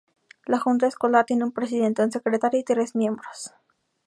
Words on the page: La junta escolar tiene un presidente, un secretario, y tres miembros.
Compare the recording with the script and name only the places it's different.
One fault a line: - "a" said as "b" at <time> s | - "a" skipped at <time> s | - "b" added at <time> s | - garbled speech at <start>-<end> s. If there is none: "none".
none